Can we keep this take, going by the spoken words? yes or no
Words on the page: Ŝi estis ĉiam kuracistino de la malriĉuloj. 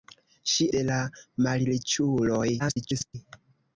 no